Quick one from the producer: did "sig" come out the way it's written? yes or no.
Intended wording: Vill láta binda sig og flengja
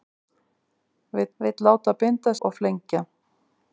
no